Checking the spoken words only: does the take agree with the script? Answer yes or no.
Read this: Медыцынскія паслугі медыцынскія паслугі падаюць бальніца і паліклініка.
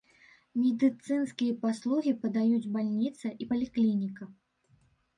no